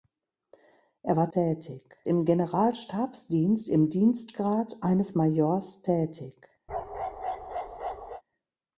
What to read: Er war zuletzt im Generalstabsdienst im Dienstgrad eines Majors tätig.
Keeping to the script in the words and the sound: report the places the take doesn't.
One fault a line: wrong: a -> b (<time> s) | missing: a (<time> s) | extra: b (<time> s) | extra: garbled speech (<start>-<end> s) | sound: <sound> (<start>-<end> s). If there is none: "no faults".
wrong: zuletzt -> tätig (1.3 s)
sound: bark (6.7-8.2 s)